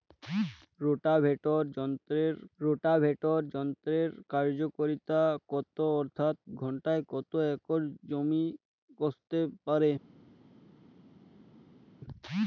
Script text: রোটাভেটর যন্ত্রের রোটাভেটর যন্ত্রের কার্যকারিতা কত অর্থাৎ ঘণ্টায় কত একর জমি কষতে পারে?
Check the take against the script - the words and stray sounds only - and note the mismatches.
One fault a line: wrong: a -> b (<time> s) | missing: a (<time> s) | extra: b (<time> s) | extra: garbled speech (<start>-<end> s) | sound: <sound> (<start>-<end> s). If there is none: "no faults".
no faults